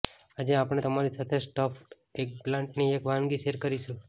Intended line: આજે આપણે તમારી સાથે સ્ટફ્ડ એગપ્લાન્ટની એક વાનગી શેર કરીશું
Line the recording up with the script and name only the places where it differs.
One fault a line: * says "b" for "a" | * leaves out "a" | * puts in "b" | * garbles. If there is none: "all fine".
all fine